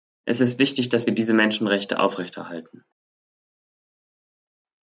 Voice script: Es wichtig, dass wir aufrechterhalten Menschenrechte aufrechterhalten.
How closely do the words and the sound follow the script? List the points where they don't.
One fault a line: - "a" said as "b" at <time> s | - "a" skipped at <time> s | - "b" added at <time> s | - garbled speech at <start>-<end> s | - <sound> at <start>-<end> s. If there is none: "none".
- "ist" added at 0.4 s
- "aufrechterhalten" said as "diese" at 1.1 s